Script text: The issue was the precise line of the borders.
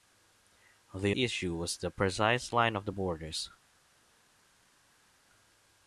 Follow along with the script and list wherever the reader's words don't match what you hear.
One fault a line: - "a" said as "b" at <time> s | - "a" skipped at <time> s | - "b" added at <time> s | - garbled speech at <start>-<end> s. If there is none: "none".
none